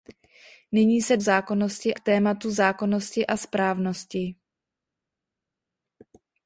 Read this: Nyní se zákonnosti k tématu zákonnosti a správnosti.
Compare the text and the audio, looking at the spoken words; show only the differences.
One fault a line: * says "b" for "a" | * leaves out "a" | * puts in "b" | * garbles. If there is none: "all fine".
all fine